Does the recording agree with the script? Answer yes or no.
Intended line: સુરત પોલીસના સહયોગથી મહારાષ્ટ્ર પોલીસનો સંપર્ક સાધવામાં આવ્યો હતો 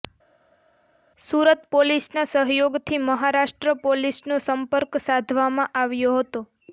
yes